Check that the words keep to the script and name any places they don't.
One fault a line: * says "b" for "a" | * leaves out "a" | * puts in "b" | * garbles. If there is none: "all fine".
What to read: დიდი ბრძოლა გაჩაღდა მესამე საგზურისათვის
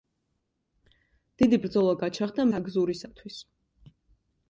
* leaves out "მესამე"